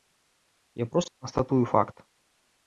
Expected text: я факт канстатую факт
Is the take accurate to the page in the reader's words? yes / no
no